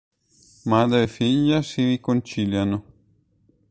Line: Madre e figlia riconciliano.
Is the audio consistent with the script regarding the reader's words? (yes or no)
no